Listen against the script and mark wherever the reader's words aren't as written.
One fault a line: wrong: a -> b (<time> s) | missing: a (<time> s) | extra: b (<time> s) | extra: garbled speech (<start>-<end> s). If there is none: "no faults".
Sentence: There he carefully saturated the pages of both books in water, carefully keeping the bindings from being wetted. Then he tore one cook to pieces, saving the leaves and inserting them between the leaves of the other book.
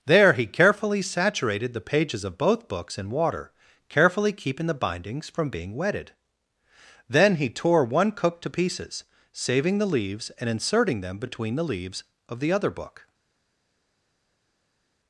no faults